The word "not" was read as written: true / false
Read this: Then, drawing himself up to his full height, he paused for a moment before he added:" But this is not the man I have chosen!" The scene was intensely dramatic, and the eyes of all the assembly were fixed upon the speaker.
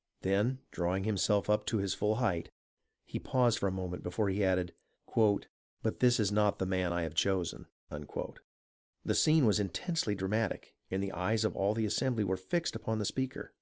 true